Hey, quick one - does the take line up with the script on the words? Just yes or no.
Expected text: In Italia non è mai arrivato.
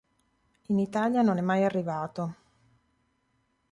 yes